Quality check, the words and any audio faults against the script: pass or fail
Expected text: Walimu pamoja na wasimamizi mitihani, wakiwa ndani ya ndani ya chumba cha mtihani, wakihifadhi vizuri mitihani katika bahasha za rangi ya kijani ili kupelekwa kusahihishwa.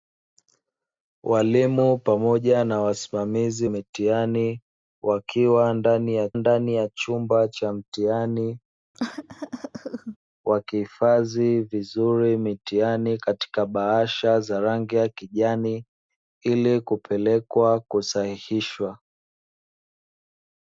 fail